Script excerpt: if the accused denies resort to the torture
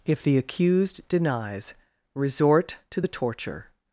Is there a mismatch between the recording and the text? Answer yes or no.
no